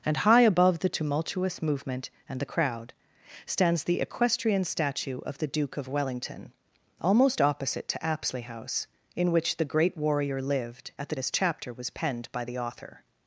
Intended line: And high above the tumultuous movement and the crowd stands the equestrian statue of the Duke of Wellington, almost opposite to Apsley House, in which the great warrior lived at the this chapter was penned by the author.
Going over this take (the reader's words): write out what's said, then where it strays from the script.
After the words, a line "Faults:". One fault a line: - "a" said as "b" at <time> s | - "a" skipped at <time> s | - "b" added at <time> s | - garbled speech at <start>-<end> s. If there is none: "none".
And high above the tumultuous movement and the crowd stands the equestrian statue of the Duke of Wellington, almost opposite to Apsley House, in which the great warrior lived at the this chapter was penned by the author.
Faults:
none